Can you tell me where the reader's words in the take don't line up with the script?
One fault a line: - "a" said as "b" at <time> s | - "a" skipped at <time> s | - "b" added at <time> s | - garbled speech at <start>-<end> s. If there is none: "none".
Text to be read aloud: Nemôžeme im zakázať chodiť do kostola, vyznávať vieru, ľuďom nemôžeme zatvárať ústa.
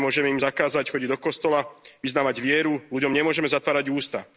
none